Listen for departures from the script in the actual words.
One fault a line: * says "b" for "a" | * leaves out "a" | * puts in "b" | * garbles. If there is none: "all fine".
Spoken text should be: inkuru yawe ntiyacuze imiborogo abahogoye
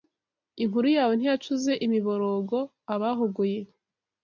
all fine